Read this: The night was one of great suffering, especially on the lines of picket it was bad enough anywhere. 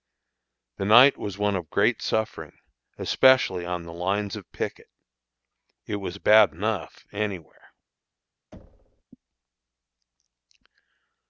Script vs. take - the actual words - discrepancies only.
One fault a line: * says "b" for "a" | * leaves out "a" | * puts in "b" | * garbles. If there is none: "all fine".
all fine